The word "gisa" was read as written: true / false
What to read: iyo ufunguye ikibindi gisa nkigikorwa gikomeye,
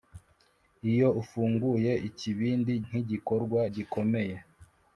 false